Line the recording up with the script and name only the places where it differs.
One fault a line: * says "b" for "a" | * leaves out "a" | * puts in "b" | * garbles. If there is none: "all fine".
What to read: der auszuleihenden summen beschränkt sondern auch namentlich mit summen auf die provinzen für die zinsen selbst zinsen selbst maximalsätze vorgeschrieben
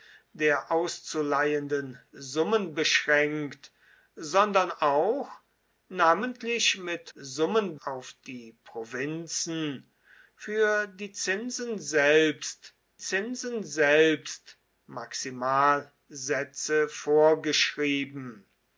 all fine